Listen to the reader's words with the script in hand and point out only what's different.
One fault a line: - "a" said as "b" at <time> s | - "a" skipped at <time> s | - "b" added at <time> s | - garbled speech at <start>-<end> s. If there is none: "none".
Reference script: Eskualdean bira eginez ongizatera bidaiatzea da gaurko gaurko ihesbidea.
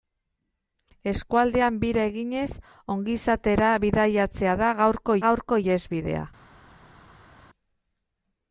none